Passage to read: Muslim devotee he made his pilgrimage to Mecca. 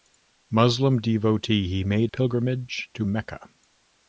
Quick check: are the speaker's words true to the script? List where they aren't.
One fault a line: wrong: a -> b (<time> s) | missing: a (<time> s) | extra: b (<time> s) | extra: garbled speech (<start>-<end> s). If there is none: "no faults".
missing: his (2.1 s)